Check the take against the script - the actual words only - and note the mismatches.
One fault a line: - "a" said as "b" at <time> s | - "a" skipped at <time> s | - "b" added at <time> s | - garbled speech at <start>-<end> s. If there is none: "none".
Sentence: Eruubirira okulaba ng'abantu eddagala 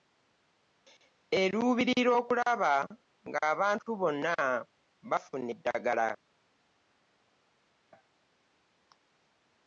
- "bonna bafuna" added at 4.0 s